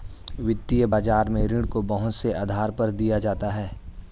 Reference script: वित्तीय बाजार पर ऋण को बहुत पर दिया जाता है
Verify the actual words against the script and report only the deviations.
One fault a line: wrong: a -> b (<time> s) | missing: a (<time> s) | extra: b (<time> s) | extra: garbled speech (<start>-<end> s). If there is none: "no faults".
wrong: पर -> में (1.3 s)
extra: से आधार (2.1 s)